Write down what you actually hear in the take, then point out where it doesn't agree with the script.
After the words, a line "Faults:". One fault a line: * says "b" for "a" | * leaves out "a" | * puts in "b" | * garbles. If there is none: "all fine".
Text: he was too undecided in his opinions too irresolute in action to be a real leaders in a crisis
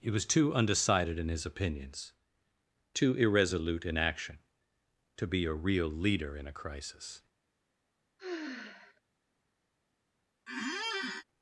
he was too undecided in his opinions too irresolute in action to be a real leader in a crisis
Faults:
* says "leader" for "leaders"